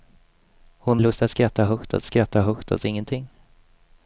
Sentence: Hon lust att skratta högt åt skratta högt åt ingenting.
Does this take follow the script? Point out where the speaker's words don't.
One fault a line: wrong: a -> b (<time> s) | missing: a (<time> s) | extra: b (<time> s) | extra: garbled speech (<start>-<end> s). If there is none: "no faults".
no faults